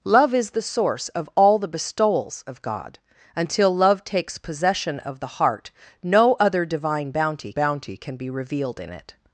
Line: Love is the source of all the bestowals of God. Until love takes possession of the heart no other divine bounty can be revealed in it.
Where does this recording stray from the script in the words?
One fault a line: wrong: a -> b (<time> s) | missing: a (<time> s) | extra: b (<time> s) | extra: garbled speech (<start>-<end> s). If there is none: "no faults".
extra: bounty (7.5 s)